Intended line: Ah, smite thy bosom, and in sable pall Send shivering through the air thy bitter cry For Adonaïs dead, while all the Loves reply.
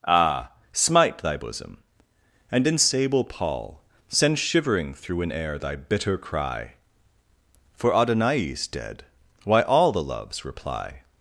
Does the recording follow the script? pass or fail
fail